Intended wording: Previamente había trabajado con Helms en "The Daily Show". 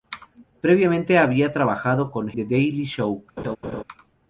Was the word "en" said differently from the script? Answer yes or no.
yes